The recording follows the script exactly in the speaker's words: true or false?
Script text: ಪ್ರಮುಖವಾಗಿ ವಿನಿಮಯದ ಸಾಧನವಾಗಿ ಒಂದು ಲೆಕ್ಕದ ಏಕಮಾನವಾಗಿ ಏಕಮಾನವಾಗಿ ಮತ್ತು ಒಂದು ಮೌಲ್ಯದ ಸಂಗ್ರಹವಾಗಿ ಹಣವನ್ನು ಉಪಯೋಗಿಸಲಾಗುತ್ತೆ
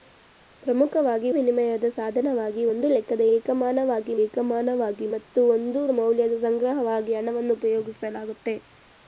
true